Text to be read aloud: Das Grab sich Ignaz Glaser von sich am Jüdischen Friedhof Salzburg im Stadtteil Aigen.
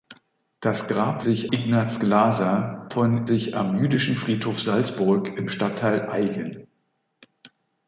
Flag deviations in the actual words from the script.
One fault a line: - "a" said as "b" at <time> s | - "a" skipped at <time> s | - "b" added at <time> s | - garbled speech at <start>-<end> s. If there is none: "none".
none